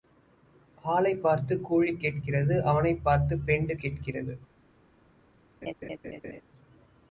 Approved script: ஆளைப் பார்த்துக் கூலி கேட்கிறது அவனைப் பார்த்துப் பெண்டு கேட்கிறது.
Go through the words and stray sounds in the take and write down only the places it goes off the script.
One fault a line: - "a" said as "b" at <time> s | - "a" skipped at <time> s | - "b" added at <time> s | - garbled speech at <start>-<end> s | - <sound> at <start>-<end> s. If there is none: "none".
- laugh at 5.6-6.4 s